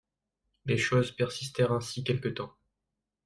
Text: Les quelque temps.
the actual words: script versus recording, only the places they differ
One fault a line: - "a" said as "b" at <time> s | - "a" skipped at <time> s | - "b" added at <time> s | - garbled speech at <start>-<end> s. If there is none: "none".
- "choses persistèrent ainsi" added at 0.8 s